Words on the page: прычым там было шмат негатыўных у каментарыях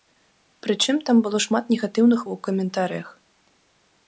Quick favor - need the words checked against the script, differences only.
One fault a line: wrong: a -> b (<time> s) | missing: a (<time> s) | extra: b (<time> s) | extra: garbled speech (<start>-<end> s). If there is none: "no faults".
no faults